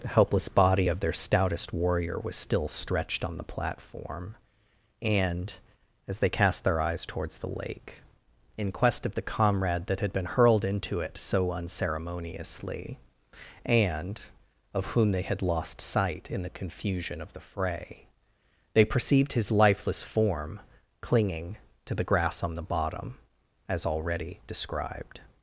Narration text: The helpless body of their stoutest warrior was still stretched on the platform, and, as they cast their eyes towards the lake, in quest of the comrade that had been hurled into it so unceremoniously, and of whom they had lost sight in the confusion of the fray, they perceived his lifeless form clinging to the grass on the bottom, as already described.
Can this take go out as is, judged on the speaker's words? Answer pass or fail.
pass